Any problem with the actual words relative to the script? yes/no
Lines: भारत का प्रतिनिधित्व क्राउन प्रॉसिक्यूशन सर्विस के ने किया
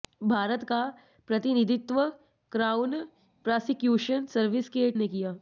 no